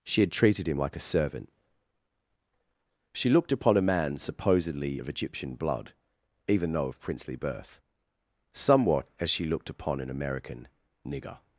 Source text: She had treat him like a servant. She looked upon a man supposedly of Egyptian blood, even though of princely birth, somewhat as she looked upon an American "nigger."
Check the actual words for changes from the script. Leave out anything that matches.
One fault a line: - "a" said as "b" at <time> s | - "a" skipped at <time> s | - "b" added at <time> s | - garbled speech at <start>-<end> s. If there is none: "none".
- "treat" said as "treated" at 0.3 s